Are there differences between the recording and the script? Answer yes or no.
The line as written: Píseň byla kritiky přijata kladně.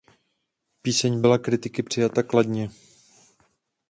no